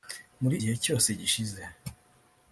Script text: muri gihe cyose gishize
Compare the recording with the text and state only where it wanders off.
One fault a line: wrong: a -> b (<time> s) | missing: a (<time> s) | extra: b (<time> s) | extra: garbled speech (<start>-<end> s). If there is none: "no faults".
no faults